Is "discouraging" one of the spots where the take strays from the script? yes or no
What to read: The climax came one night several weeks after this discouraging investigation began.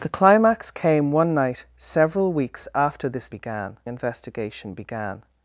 yes